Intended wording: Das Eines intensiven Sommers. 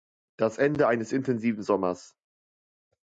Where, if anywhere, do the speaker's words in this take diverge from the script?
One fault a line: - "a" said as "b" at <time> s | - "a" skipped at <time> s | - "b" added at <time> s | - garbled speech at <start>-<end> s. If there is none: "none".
- "Ende" added at 0.6 s